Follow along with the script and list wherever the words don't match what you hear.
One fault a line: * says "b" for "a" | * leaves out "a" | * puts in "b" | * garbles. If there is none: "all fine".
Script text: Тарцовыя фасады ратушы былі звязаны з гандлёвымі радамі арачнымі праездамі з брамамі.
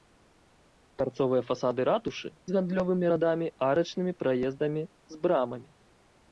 * leaves out "былі звязаны"